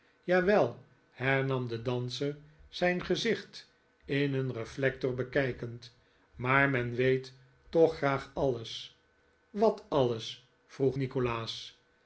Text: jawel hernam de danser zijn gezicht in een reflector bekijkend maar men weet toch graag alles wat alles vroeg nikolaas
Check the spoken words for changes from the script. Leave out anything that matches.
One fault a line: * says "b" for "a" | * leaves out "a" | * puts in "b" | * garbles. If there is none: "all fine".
all fine